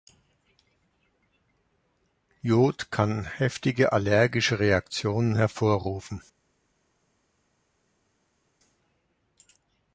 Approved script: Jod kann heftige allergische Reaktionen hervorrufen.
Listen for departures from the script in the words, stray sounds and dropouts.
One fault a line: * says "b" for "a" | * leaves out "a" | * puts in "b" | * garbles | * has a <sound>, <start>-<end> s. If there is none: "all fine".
all fine